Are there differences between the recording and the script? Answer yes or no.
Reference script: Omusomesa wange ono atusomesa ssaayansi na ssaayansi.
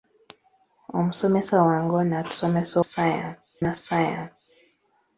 no